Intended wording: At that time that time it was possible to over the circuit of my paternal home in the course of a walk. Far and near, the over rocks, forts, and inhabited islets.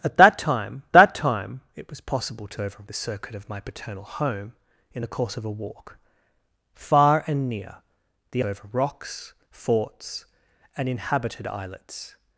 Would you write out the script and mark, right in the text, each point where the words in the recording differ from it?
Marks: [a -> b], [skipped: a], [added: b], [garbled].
At that time that time it was possible to over the circuit of my paternal home in the course of a walk. Far and near, the over rocks, forts, and inhabited islets.